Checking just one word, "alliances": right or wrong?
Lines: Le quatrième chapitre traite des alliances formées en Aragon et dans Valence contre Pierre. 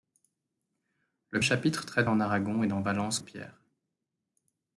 wrong